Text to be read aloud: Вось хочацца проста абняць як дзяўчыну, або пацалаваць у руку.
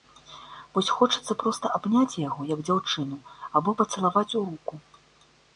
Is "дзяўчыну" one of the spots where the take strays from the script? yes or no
no